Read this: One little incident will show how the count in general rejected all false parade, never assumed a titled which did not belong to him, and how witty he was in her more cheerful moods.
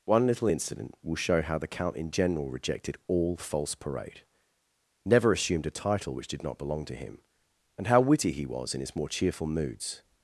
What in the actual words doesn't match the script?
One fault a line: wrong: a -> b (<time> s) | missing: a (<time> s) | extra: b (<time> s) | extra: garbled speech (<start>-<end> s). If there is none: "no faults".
wrong: titled -> title (5.7 s)
wrong: her -> his (8.8 s)